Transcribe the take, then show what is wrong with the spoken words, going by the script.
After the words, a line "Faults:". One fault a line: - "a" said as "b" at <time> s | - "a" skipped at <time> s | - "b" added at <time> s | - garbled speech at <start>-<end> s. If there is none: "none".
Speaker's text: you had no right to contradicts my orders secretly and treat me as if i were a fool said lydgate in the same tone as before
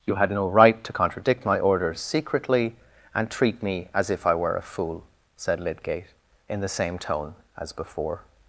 you had no right to contradict my orders secretly and treat me as if i were a fool said lydgate in the same tone as before
Faults:
- "contradicts" said as "contradict" at 0.9 s